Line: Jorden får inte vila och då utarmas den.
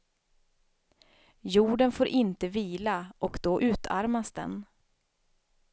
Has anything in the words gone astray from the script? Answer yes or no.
no